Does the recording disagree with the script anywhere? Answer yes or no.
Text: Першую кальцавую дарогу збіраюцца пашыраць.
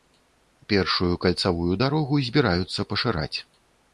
no